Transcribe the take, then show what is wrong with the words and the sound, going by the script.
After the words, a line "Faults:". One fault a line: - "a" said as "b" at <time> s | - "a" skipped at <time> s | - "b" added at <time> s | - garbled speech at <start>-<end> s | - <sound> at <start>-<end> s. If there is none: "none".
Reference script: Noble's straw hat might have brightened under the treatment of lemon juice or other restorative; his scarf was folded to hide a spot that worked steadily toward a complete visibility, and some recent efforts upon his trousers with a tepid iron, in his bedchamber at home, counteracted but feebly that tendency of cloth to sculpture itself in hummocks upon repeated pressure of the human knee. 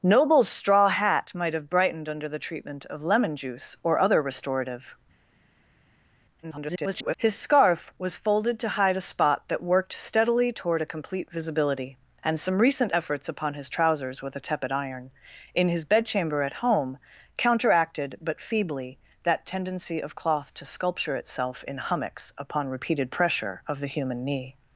Noble's straw hat might have brightened under the treatment of lemon juice or other restorative; [garbled] his scarf was folded to hide a spot that worked steadily toward a complete visibility, and some recent efforts upon his trousers with a tepid iron, in his bedchamber at home, counteracted but feebly that tendency of cloth to sculpture itself in hummocks upon repeated pressure of the human knee.
Faults:
- garbled speech at 6.4-7.2 s